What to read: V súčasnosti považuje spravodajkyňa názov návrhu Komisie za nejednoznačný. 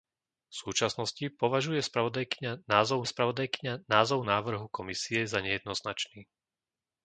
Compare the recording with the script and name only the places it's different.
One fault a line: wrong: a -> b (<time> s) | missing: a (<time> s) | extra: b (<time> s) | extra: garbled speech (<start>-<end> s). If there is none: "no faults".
extra: spravodajkyňa názov (3.0 s)